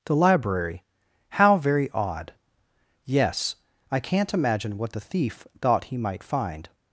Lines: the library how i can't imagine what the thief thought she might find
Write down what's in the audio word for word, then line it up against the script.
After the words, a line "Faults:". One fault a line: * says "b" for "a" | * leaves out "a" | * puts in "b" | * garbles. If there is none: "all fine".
the library how very odd yes i can't imagine what the thief thought he might find
Faults:
* puts in "very odd yes"
* says "he" for "she"